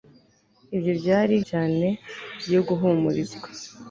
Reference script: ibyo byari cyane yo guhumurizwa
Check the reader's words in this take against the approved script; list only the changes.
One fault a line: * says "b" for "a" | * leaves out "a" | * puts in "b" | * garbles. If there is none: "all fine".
all fine